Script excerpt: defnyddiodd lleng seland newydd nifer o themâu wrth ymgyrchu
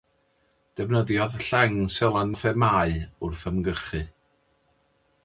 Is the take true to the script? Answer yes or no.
no